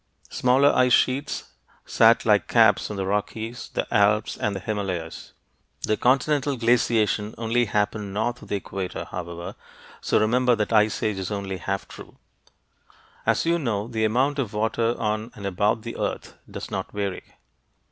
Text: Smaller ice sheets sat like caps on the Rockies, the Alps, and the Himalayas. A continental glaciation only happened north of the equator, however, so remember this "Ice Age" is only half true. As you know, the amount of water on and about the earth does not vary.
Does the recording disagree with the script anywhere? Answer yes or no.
yes